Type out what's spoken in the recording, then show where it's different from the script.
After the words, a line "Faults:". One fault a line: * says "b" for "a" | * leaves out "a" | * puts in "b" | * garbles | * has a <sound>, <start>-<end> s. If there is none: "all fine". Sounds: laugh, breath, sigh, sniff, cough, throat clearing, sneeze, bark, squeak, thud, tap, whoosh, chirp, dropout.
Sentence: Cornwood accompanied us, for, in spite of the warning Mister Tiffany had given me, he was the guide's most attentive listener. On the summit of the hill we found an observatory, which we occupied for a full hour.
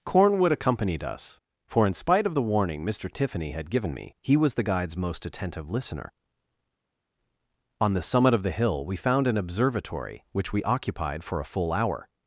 Cornwood accompanied us, for, in spite of the warning Mister Tiffany had given me, he was the guide's most attentive listener. On the summit of the hill we found an observatory, which we occupied for a full hour.
Faults:
all fine